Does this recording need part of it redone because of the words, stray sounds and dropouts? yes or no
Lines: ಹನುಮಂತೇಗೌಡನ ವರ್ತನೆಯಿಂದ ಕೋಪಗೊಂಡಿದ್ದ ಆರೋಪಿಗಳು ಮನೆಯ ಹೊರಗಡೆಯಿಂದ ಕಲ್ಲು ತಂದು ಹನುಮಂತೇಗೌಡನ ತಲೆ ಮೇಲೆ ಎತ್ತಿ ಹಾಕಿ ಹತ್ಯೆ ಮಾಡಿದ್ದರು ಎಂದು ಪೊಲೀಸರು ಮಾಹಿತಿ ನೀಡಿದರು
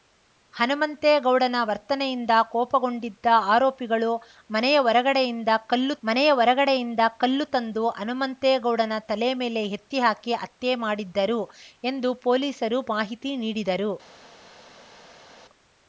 yes